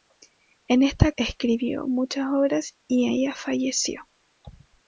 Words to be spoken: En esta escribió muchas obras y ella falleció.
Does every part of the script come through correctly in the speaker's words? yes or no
yes